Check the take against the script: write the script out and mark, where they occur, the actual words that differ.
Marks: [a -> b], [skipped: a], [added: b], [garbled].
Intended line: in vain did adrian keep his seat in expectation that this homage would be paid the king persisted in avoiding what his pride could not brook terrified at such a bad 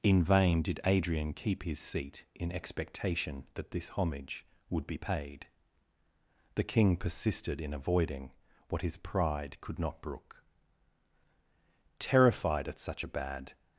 in vain did adrian keep his seat in expectation that this homage would be paid the king persisted in avoiding what his pride could not brook terrified at such a bad